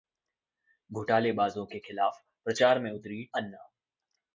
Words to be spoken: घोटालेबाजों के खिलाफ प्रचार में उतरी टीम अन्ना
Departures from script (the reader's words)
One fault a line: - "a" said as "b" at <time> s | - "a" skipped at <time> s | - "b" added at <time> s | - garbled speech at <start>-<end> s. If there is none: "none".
- "टीम" skipped at 3.2 s